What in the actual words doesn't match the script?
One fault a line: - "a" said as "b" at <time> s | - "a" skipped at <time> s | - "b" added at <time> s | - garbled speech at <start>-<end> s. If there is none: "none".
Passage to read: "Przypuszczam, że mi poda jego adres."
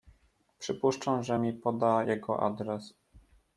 none